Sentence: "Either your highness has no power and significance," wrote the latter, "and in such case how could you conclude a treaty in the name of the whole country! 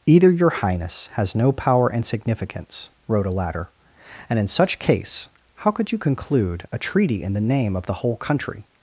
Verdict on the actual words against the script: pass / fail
fail